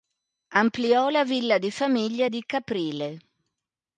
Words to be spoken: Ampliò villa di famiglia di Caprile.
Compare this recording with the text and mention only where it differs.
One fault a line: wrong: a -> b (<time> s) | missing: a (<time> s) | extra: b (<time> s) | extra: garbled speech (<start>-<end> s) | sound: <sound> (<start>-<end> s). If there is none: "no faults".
extra: la (1.1 s)